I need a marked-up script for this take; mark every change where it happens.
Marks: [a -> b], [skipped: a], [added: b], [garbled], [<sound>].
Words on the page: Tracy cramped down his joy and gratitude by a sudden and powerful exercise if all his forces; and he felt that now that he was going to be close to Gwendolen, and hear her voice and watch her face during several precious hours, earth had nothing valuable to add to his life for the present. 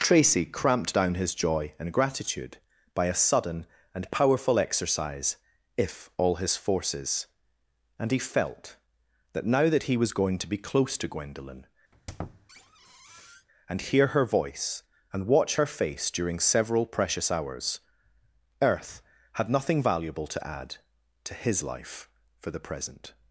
Tracy cramped down his joy and gratitude by a sudden and powerful exercise if all his forces; and he felt that now that he was going to be close to Gwendolen, [squeak] and hear her voice and watch her face during several precious hours, earth had nothing valuable to add to his life for the present.